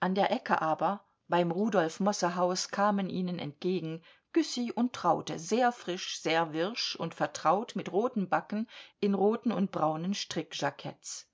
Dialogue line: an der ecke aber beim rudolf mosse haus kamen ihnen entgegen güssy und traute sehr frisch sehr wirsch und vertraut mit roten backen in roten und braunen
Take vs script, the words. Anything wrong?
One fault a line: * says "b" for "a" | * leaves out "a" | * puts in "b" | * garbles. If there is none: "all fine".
all fine